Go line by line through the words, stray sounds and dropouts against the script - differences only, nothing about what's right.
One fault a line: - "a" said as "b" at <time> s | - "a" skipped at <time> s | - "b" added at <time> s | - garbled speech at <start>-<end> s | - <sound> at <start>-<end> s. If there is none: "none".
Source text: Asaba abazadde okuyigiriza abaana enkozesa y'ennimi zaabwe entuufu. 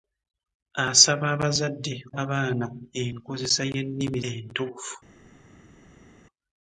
- "okuyigiriza" skipped at 1.9 s
- "zaabwe" skipped at 4.2 s